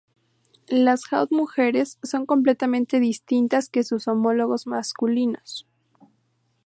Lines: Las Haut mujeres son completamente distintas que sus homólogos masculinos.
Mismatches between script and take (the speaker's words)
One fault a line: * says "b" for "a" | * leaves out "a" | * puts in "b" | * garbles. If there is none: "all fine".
all fine